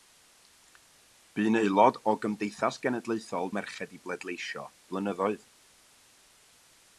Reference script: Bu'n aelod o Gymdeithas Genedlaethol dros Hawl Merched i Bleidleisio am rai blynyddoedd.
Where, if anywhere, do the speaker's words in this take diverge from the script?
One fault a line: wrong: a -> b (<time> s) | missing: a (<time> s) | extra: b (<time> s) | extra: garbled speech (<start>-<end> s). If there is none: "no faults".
missing: dros Hawl (3.5 s)
missing: am rai (4.7 s)